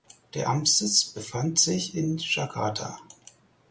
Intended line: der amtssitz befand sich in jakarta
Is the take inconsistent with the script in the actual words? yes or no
no